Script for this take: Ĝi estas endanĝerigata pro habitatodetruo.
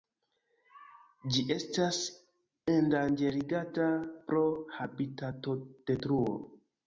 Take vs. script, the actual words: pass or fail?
pass